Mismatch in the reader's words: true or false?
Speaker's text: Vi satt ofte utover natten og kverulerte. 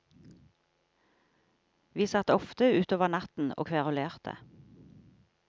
false